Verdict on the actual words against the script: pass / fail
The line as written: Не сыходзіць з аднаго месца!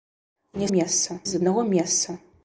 fail